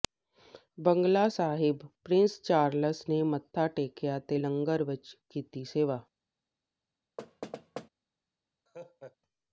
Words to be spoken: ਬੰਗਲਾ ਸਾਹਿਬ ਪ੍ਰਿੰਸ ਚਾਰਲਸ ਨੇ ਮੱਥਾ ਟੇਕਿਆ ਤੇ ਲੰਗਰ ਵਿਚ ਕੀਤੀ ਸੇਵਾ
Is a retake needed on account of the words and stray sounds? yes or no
yes